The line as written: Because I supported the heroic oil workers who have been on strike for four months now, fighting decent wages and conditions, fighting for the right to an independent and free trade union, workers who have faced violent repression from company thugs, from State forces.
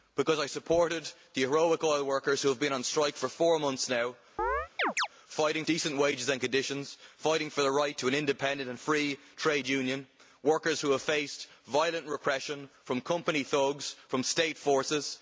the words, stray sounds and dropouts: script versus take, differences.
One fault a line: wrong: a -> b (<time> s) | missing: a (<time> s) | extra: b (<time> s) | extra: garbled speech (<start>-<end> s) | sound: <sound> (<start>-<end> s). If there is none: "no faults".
sound: chirp (4.4-5.1 s)